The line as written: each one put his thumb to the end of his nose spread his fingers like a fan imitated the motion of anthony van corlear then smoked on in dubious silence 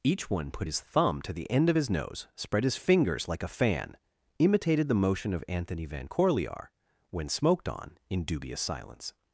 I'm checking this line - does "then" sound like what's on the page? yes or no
no